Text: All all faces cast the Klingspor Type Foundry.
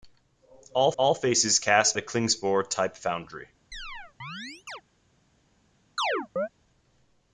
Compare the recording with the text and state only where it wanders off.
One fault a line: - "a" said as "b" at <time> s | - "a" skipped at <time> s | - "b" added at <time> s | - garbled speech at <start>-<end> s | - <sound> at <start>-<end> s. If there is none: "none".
- chirp at 3.7-4.8 s
- chirp at 6.0-6.5 s